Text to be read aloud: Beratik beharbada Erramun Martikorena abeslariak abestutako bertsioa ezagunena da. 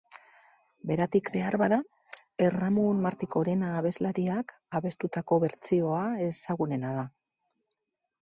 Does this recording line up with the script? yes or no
yes